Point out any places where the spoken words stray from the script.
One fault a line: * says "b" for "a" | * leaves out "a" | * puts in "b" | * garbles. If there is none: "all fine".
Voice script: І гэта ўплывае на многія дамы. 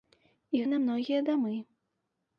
* leaves out "гэта ўплывае"